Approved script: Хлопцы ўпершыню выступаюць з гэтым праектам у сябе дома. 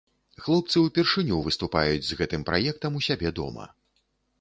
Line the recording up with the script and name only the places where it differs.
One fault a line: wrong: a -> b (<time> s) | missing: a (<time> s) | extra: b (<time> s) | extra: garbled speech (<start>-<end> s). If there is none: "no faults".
no faults